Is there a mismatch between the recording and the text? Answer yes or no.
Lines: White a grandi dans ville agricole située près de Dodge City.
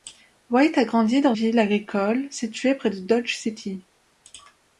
no